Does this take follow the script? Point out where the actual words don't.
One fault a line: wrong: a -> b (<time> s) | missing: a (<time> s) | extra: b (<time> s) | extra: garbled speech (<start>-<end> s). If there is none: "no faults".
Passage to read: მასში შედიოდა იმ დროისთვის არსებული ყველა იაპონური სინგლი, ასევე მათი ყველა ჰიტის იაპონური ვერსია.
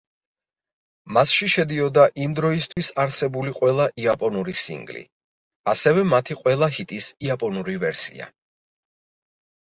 no faults